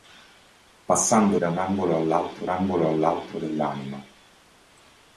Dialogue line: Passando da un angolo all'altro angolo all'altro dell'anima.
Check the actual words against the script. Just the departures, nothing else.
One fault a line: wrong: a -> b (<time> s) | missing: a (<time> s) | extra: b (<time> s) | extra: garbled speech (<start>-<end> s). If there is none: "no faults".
no faults